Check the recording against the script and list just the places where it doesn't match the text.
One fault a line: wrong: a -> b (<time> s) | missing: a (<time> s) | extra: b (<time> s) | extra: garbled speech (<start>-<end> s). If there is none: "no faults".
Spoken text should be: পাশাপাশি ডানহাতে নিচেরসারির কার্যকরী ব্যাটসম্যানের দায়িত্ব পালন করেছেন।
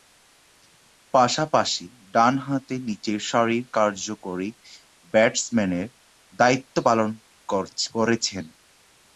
no faults